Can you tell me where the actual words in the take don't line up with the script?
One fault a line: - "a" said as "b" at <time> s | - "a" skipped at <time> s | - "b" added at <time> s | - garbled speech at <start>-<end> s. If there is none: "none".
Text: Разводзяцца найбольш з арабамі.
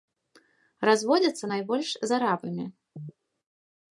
none